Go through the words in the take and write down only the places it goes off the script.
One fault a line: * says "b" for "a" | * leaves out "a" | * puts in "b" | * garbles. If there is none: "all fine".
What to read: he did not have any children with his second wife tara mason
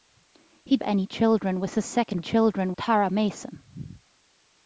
* leaves out "did not have"
* says "children" for "wife"